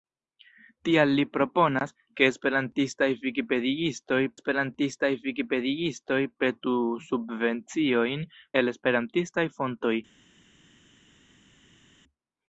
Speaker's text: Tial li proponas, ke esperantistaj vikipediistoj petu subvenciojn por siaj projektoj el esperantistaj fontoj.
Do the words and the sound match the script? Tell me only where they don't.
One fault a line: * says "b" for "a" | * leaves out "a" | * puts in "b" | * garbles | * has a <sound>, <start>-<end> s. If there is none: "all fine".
* puts in "esperantistaj vikipediistoj"
* leaves out "por siaj projektoj"